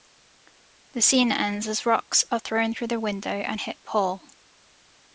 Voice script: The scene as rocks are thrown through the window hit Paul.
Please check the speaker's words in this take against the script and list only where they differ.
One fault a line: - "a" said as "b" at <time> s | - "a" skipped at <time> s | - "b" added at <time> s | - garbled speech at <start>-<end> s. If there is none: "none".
- "ends" added at 1.3 s
- "and" added at 3.3 s